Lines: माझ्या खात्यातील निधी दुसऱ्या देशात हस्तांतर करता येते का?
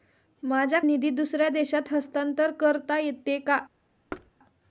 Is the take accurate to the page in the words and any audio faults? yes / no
no